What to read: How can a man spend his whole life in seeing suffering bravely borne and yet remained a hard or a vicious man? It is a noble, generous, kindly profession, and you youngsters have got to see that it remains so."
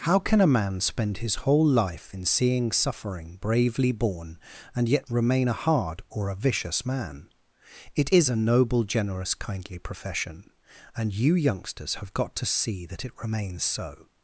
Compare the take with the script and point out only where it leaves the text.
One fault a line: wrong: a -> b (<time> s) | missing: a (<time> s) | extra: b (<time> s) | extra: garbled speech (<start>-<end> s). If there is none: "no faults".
wrong: remained -> remain (5.1 s)